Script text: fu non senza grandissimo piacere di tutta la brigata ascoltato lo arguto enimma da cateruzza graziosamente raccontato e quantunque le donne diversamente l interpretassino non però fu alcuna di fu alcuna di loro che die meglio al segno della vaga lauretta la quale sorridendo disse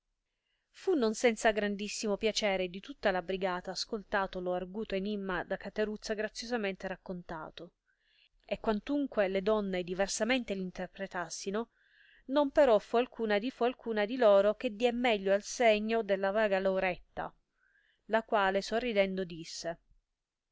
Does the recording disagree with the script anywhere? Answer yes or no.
no